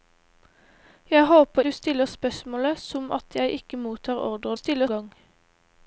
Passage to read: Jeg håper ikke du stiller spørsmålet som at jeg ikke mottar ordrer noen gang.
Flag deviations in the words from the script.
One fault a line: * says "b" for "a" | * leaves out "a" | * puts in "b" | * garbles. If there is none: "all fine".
* leaves out "ikke"
* says "stiller" for "noen"